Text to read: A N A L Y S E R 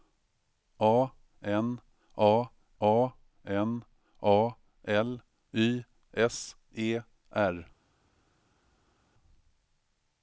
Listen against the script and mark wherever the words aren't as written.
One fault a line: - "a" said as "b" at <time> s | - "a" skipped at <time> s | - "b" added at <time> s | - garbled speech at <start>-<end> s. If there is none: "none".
- "a N A" added at 2.8 s